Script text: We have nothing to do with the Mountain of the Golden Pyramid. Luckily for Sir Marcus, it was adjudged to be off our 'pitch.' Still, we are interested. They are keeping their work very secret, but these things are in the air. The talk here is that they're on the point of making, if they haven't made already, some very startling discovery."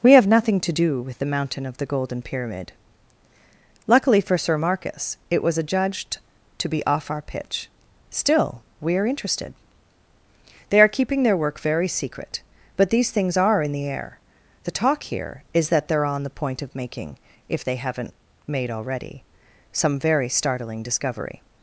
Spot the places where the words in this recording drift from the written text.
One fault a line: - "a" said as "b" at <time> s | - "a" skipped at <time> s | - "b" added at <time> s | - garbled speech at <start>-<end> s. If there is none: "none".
none